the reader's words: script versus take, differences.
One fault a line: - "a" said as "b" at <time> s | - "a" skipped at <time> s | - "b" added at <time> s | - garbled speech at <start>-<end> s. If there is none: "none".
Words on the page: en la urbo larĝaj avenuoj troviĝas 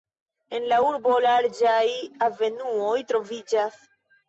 none